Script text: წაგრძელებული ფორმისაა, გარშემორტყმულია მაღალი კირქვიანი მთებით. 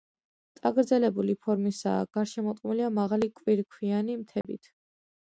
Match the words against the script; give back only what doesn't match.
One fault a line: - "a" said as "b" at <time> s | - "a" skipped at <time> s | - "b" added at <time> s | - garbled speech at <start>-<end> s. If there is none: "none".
none